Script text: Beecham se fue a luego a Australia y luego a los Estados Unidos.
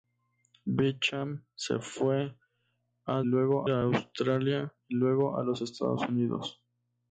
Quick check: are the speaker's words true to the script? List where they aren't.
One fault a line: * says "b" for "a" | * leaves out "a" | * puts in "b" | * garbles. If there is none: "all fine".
all fine